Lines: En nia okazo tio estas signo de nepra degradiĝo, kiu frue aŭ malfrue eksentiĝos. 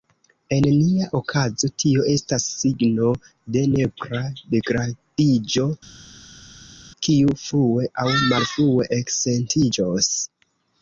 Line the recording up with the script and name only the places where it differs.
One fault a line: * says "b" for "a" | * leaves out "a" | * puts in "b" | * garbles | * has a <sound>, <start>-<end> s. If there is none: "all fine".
all fine